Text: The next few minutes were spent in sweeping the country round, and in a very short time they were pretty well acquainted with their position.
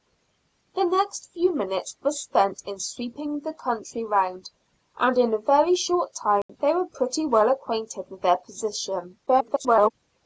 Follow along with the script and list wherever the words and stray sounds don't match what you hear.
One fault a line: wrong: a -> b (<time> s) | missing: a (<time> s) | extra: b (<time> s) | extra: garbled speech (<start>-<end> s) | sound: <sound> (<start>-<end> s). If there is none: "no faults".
sound: dropout (6.4-6.5 s)
extra: garbled speech (9.3-9.9 s)